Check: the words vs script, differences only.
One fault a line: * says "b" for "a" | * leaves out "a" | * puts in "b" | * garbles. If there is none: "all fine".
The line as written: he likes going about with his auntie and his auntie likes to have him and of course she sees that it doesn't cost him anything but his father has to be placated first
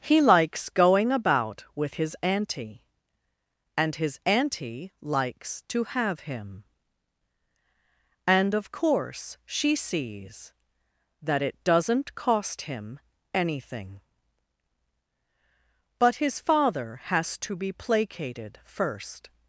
all fine